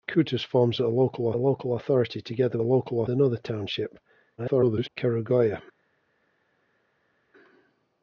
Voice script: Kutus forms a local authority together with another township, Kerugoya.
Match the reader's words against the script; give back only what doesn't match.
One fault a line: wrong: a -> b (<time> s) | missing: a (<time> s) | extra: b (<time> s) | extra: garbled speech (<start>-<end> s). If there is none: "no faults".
extra: local (1.3 s)
wrong: with -> local (2.6 s)
extra: garbled speech (4.4-4.9 s)